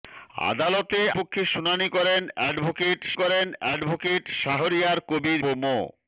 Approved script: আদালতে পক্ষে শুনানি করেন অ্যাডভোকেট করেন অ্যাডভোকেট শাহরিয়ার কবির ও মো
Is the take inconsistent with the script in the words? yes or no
no